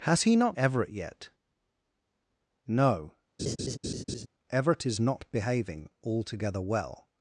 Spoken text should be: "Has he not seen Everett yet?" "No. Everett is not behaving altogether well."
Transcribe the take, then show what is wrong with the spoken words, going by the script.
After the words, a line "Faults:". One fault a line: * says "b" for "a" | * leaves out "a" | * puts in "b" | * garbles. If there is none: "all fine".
"Has he not Everett yet?" "No. Everett is not behaving altogether well."
Faults:
* leaves out "seen"